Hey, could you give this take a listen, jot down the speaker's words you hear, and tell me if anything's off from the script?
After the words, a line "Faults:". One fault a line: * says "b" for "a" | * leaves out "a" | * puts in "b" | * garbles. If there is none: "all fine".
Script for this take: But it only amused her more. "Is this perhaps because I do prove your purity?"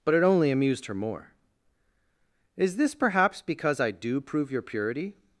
But it only amused her more. "Is this perhaps because I do prove your purity?"
Faults:
all fine